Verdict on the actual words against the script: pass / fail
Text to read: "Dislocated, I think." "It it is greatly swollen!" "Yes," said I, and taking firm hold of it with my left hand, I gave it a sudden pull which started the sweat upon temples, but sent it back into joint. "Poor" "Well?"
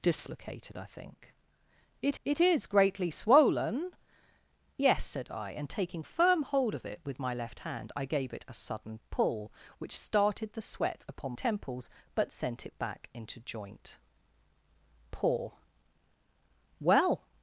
pass